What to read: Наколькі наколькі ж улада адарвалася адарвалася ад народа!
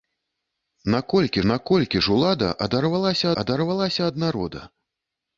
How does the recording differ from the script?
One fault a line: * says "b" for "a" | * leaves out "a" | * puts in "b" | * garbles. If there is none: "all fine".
all fine